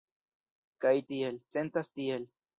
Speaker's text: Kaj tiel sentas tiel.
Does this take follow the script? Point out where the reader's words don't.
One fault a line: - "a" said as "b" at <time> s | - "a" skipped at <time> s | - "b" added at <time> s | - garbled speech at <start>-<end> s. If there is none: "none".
none